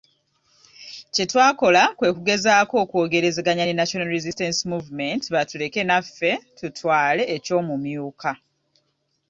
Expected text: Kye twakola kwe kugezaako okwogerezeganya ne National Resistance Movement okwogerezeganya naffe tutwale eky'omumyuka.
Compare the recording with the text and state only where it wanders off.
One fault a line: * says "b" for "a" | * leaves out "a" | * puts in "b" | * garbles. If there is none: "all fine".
* says "batuleke" for "okwogerezeganya"